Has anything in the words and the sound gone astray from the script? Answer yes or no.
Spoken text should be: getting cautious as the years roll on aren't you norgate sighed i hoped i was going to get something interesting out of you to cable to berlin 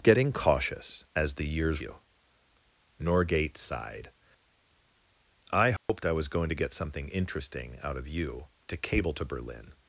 yes